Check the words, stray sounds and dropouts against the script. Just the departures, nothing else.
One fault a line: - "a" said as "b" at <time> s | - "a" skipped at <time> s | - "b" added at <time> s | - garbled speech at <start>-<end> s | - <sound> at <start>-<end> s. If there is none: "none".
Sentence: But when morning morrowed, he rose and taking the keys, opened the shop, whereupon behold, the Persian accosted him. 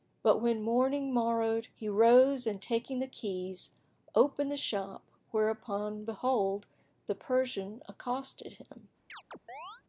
- chirp at 9.1-9.8 s